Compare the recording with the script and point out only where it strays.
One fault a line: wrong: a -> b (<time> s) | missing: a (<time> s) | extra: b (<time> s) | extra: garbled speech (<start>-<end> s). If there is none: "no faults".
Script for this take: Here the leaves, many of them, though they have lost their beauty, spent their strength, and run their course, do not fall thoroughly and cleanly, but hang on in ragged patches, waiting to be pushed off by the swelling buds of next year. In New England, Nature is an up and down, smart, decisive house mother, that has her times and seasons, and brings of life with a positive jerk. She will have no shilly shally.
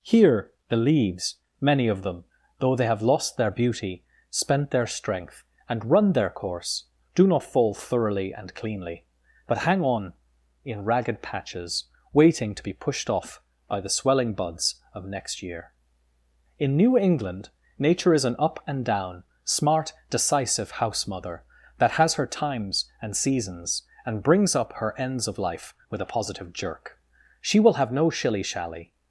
extra: up her ends (24.6 s)